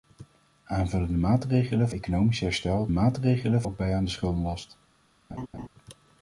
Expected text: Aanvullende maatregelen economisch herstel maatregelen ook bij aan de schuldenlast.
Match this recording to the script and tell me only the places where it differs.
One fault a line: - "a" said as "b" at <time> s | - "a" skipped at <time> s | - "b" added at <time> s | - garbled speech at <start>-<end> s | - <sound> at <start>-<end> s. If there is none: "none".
- laugh at 5.3-5.7 s